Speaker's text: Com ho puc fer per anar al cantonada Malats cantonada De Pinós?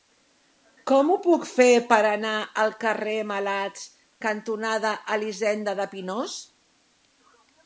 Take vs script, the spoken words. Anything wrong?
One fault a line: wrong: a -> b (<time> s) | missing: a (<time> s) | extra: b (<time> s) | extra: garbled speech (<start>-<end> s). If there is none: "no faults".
wrong: cantonada -> carrer (2.9 s)
extra: Elisenda (5.2 s)